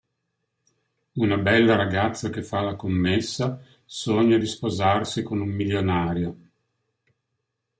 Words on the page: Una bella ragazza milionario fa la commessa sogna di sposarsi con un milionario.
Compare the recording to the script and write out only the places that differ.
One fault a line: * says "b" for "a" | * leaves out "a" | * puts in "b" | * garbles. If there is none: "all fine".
* says "che" for "milionario"